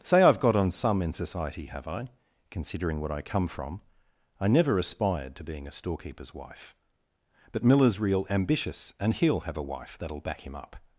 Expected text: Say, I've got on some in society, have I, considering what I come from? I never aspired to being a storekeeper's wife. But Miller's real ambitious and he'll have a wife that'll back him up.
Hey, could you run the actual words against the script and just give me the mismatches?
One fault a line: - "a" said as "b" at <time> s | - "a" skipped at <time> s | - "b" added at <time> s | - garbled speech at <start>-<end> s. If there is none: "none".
none